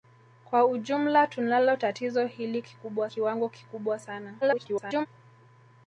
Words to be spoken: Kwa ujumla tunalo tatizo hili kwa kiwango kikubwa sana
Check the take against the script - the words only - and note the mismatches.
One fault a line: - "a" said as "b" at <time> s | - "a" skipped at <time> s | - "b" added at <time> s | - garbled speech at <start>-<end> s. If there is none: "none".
- "kwa" said as "kikubwa" at 2.6 s
- garbled speech at 4.4-5.1 s